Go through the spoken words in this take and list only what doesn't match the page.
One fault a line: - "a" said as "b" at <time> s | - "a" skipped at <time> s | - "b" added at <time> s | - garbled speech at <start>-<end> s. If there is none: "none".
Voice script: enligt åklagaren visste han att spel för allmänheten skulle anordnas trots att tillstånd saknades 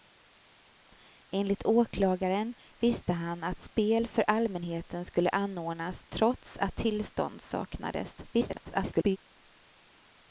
- garbled speech at 8.3-9.2 s